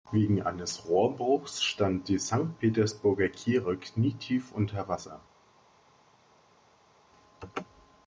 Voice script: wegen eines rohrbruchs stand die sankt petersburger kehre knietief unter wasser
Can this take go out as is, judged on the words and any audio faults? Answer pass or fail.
pass